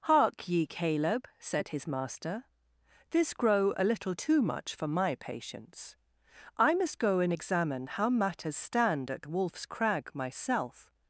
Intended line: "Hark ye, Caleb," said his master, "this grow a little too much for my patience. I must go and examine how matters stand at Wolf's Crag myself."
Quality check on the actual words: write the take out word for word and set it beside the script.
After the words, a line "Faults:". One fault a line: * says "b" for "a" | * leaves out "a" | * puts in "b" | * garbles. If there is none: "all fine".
"Hark ye, Caleb," said his master, "this grow a little too much for my patience. I must go and examine how matters stand at Wolf's Crag myself."
Faults:
all fine